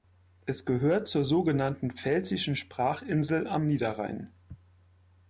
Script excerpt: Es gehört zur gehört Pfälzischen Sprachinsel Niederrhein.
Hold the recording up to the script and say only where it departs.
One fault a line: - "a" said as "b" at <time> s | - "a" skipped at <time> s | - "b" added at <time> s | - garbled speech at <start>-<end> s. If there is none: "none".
- "gehört" said as "sogenannten" at 1.3 s
- "am" added at 3.5 s